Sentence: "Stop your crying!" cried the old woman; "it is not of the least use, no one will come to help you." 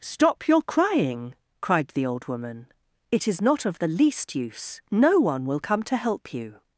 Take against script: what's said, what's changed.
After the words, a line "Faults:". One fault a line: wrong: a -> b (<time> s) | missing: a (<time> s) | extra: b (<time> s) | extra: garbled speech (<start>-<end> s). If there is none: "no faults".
"Stop your crying!" cried the old woman; "it is not of the least use, no one will come to help you."
Faults:
no faults